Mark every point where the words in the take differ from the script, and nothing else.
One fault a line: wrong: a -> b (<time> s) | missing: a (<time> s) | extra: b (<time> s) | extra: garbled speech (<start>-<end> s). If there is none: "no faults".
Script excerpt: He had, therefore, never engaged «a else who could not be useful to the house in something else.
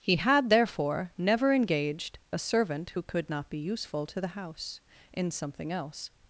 wrong: else -> servant (2.4 s)